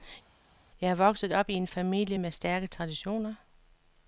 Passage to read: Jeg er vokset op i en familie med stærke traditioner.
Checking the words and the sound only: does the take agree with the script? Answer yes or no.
yes